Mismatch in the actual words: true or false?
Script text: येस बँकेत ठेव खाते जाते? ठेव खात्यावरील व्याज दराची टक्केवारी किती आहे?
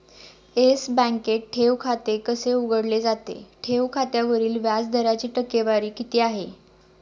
true